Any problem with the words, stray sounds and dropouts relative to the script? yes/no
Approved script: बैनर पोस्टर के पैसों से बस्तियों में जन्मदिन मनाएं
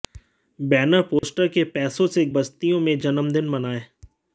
yes